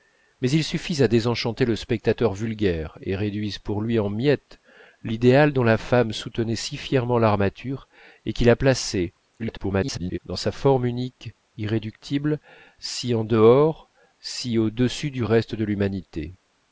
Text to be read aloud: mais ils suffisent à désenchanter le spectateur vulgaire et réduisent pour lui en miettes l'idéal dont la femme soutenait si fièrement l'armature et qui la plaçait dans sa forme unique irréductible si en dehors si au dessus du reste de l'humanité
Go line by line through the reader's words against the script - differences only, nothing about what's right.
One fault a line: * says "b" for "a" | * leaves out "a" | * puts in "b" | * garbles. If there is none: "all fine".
* garbles